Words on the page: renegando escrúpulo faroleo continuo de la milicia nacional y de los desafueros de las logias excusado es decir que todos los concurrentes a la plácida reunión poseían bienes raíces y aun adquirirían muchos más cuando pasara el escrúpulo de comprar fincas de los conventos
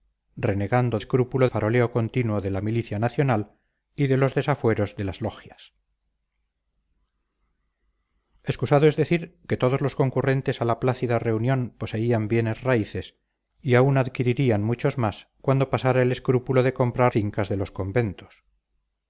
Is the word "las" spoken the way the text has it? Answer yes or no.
yes